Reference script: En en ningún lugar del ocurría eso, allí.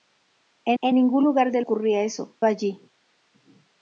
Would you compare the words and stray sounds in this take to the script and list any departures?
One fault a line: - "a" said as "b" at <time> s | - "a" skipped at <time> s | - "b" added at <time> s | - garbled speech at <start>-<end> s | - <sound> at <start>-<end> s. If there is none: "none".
none